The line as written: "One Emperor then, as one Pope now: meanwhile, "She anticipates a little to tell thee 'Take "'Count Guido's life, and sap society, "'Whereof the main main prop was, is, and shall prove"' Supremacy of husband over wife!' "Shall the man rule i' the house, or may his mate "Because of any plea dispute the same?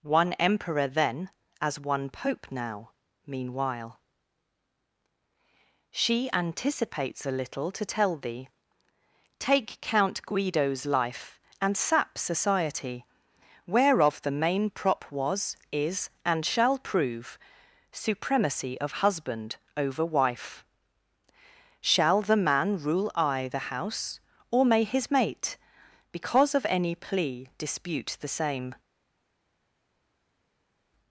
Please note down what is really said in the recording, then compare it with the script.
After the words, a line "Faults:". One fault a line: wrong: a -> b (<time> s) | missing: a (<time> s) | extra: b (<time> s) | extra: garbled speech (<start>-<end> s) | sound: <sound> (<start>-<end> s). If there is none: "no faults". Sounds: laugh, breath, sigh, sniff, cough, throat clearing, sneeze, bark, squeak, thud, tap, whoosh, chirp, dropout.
"One Emperor then, as one Pope now: meanwhile, "She anticipates a little to tell thee 'Take "'Count Guido's life, and sap society, "'Whereof the main prop was, is, and shall prove"' Supremacy of husband over wife!' "Shall the man rule i' the house, or may his mate "Because of any plea dispute the same?
Faults:
missing: main (14.7 s)